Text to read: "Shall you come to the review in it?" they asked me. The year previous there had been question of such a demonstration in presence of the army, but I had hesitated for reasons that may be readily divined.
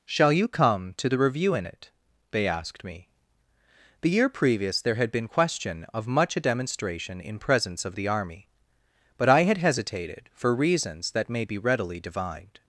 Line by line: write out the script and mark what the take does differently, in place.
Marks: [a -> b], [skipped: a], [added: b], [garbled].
"Shall you come to the review in it?" they asked me. The year previous there had been question of [such -> much] a demonstration in presence of the army, but I had hesitated for reasons that may be readily divined.